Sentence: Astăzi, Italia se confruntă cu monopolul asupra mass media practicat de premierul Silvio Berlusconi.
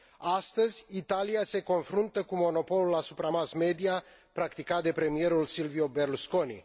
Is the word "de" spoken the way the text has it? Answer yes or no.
yes